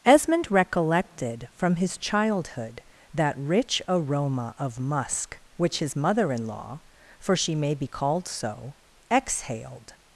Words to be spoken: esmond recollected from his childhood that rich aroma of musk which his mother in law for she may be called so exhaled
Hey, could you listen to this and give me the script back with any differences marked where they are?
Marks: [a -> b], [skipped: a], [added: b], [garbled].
esmond recollected from his childhood that rich aroma of musk which his mother in law for she may be called so exhaled